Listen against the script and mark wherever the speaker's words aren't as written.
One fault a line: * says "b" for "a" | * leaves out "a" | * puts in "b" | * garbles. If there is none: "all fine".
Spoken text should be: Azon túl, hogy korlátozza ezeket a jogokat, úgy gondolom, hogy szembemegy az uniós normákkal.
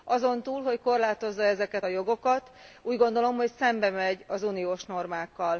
all fine